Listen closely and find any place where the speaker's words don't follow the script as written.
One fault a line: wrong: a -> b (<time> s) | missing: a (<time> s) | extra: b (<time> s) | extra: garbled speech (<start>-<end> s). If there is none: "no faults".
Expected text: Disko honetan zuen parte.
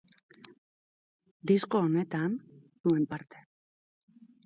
no faults